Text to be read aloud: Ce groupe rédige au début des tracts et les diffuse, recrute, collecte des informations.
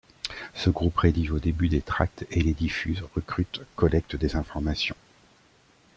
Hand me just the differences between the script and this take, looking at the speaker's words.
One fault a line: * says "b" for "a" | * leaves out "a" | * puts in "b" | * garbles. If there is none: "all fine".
all fine